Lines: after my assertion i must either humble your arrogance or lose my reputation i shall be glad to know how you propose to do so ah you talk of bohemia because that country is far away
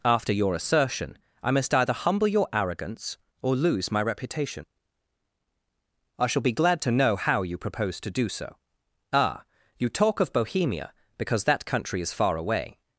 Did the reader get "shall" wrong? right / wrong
right